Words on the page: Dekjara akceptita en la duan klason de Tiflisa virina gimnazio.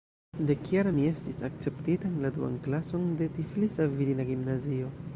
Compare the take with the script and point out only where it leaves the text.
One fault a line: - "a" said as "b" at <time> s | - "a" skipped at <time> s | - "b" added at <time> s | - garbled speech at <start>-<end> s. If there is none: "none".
- "mi estis" added at 0.9 s